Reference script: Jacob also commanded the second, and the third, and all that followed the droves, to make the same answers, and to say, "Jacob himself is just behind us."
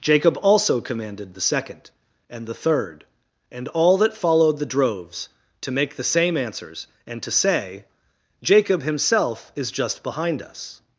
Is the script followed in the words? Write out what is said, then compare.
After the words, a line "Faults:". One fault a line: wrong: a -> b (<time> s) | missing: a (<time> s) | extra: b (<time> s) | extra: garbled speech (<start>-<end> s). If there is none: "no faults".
Jacob also commanded the second, and the third, and all that followed the droves, to make the same answers, and to say, "Jacob himself is just behind us."
Faults:
no faults